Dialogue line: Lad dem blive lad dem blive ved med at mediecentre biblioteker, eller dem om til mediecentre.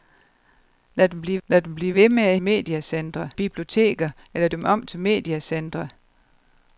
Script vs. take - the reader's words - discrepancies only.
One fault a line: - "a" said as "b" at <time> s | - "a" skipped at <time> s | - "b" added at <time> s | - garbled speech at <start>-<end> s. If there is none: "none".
none